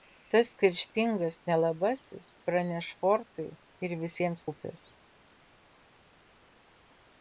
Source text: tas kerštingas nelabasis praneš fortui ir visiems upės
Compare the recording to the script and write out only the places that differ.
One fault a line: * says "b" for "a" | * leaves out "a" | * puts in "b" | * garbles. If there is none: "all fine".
all fine